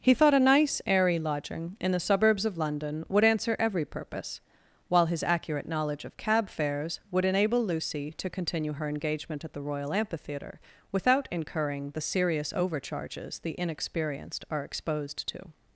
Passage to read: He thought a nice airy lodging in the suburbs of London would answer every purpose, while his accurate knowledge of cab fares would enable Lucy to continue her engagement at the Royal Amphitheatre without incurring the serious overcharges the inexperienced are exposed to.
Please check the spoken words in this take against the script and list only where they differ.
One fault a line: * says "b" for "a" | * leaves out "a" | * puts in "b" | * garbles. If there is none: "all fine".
all fine